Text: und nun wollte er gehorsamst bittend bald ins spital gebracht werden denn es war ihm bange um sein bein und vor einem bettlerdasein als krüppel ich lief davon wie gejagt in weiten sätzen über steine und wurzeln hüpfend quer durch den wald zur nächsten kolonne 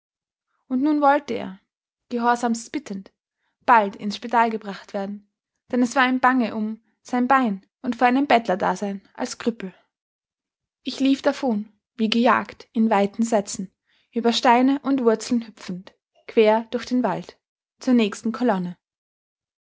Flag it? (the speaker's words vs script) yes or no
no